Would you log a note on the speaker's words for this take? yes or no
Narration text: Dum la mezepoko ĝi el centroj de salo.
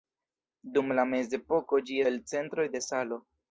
no